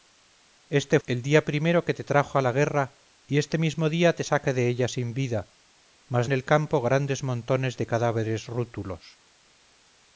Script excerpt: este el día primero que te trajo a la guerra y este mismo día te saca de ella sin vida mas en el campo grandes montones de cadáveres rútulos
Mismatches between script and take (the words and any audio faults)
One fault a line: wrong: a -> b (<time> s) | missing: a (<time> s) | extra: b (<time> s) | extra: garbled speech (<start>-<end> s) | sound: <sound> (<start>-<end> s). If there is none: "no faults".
no faults